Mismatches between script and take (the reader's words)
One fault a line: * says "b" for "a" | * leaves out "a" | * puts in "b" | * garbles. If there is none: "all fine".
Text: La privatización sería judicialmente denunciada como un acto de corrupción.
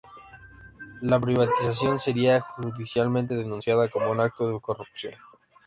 all fine